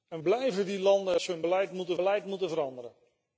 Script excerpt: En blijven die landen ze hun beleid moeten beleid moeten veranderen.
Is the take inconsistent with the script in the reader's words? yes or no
no